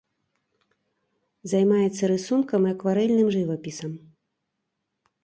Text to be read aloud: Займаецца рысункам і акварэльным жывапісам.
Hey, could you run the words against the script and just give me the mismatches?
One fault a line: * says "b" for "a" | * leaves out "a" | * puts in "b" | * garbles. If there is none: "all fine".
all fine